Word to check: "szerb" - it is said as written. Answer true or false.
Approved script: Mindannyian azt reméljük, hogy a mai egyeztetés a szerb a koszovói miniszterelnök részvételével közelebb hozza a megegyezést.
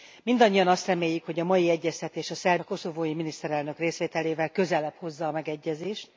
true